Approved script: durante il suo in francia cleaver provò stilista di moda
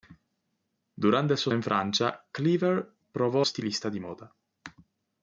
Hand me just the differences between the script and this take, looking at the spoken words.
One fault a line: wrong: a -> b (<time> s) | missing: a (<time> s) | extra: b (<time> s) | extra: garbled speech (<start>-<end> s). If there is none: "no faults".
no faults